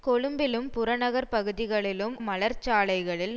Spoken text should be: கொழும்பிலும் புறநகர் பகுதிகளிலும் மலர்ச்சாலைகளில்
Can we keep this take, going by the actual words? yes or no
yes